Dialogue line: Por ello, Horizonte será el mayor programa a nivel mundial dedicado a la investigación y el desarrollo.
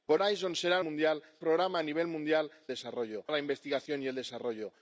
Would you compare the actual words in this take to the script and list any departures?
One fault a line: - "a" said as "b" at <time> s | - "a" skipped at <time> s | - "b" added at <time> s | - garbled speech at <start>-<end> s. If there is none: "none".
- "ello" skipped at 0.2 s
- "mayor" said as "mundial" at 0.8 s
- "dedicado" said as "desarrollo" at 2.7 s